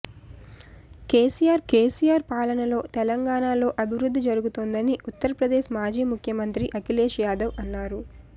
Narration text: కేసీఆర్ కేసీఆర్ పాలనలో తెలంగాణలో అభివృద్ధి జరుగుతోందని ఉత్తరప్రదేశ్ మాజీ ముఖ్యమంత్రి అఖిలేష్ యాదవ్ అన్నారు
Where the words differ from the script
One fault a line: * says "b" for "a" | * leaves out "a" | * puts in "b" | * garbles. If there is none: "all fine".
all fine